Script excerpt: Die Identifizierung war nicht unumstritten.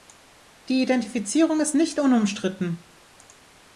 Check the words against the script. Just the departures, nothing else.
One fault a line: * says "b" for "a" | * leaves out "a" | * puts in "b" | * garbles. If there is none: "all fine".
* says "ist" for "war"